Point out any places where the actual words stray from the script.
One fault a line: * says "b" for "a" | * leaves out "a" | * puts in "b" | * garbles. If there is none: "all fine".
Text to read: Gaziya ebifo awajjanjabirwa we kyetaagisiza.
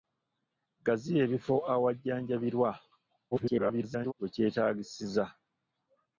* garbles